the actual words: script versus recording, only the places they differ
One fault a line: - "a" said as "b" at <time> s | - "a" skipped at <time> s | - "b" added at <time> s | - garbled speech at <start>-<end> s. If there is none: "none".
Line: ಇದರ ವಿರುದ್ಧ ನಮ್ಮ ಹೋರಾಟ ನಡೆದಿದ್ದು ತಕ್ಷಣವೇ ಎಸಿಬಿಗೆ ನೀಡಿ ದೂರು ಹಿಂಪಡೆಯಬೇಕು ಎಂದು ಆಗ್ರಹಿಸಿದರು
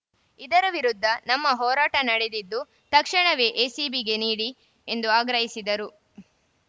- "ದೂರು ಹಿಂಪಡೆಯಬೇಕು" skipped at 4.5 s